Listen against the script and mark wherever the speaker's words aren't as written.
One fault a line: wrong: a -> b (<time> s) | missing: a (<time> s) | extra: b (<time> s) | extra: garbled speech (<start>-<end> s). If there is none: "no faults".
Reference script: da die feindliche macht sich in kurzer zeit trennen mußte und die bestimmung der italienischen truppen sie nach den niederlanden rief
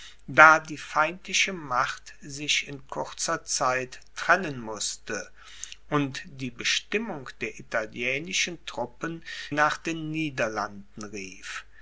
missing: sie (9.2 s)